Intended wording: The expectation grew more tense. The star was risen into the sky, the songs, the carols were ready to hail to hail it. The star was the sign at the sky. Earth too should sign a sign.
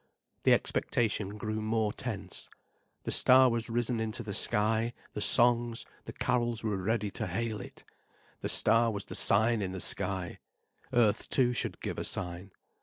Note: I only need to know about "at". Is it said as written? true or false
false